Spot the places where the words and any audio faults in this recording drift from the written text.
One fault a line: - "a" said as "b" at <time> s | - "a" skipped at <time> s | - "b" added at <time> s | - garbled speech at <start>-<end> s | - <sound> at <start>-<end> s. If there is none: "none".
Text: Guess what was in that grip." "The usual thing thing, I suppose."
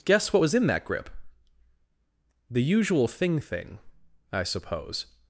none